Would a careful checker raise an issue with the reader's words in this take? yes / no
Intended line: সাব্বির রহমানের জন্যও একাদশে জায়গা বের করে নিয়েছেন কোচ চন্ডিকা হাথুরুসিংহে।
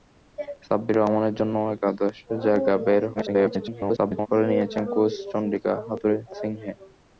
yes